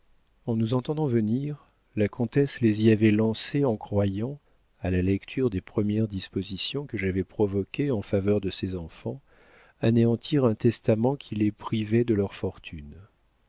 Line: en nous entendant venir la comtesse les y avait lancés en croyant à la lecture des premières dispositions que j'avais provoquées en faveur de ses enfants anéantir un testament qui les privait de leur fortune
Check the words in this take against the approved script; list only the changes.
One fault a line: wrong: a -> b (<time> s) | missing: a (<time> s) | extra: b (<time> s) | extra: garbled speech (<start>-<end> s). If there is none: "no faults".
no faults